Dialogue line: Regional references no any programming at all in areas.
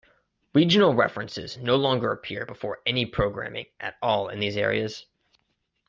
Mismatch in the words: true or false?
true